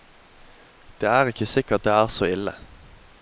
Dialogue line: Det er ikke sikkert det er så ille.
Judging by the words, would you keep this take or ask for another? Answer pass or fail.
pass